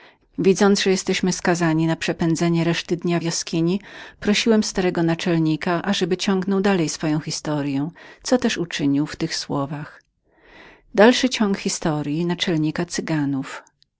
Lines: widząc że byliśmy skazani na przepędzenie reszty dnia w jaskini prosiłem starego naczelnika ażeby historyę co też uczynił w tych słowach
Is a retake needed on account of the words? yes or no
yes